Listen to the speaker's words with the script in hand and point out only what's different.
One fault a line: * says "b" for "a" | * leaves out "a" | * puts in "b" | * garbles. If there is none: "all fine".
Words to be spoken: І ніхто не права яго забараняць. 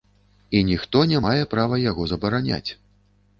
* puts in "мае"